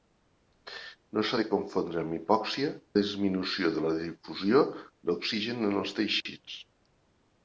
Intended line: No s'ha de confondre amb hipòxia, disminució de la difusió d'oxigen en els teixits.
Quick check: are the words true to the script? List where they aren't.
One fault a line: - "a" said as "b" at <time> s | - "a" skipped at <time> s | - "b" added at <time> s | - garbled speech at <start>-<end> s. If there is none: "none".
none